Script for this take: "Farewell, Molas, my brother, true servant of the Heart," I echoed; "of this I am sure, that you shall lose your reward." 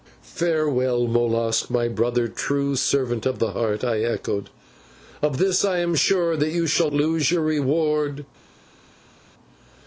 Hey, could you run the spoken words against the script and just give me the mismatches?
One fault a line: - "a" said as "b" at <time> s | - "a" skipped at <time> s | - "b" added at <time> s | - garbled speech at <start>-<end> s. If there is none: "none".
none